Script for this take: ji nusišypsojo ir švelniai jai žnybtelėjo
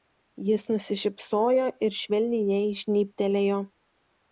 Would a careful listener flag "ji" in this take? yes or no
yes